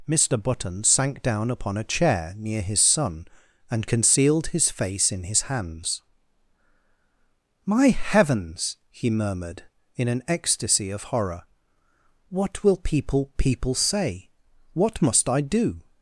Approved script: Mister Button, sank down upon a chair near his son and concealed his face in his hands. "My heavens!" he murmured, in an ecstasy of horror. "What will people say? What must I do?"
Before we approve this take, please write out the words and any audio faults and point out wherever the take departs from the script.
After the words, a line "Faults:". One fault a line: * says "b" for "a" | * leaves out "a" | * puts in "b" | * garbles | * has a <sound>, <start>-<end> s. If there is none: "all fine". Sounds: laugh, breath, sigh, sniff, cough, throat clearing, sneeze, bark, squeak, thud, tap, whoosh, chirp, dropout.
Mister Button, sank down upon a chair near his son and concealed his face in his hands. "My heavens!" he murmured, in an ecstasy of horror. "What will people people say? What must I do?"
Faults:
* puts in "people"